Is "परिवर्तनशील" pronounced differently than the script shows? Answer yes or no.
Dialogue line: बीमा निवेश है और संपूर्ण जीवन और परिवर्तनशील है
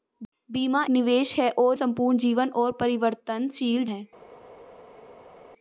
no